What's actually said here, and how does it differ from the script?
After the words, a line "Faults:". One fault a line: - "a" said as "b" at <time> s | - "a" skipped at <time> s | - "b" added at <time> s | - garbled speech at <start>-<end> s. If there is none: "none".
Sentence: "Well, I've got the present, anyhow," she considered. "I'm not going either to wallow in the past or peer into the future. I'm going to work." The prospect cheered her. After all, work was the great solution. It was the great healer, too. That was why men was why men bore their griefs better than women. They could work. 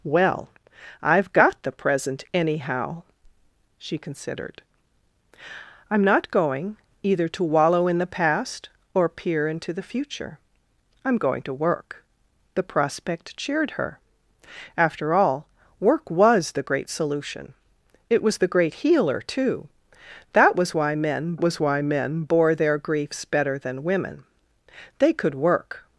"Well, I've got the present, anyhow," she considered. "I'm not going either to wallow in the past or peer into the future. I'm going to work." The prospect cheered her. After all, work was the great solution. It was the great healer, too. That was why men was why men bore their griefs better than women. They could work.
Faults:
none